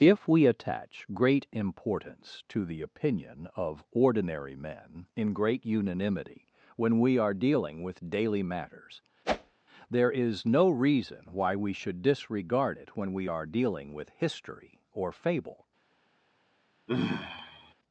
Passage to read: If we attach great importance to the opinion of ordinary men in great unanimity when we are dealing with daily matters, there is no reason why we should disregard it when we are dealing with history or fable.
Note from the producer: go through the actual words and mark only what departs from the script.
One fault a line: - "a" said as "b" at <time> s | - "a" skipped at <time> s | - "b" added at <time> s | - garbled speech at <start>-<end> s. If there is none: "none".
none